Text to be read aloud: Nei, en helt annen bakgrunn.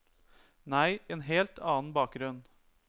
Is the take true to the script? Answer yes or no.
yes